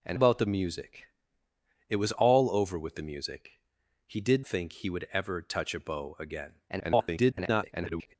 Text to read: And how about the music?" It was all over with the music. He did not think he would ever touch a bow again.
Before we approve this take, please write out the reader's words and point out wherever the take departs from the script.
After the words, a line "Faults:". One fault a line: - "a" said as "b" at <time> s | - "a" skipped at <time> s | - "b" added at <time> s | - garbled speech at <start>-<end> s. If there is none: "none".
And about the music?" It was all over with the music. He did think he would ever touch a bow again. [garbled]
Faults:
- "how" skipped at 0.2 s
- "not" skipped at 4.4 s
- garbled speech at 6.7-8.1 s